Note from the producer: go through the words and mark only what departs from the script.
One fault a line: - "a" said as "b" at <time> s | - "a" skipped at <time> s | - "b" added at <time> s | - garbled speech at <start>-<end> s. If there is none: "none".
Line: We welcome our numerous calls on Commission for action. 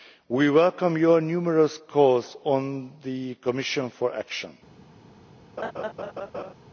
- "our" said as "your" at 1.0 s
- "the" added at 3.0 s